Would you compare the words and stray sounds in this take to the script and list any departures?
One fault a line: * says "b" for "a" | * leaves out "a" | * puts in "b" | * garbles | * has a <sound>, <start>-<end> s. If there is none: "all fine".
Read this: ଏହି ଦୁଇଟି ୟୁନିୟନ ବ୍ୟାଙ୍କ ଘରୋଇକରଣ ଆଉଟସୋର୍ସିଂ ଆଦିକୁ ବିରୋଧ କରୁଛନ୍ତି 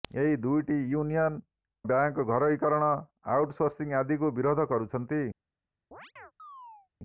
* has a chirp, 5.9-6.9 s